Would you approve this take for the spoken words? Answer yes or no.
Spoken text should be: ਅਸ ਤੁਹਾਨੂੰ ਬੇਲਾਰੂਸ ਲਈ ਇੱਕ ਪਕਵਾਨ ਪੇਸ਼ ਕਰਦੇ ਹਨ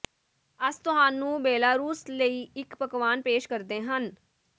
yes